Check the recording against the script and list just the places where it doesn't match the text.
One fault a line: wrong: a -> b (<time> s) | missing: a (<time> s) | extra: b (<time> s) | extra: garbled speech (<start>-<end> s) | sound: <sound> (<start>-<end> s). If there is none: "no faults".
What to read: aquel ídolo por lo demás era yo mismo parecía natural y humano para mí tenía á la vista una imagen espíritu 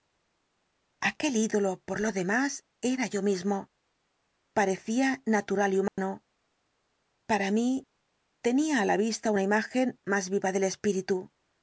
sound: dropout (5.9-6.0 s)
extra: más viva del (10.1 s)